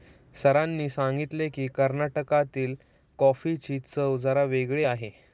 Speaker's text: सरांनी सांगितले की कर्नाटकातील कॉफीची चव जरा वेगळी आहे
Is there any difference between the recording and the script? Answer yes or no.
no